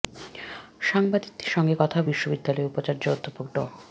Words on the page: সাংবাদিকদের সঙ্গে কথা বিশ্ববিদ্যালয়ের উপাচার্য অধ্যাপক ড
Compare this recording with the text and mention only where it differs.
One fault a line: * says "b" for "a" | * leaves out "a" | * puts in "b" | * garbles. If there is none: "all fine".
all fine